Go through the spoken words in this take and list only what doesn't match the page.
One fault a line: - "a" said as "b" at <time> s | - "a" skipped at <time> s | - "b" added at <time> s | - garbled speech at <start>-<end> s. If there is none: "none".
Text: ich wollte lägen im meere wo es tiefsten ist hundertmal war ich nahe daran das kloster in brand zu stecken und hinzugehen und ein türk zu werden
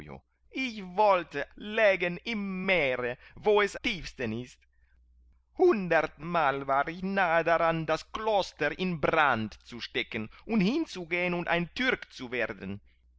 none